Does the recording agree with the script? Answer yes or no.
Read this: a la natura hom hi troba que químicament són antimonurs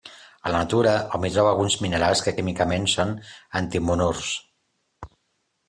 no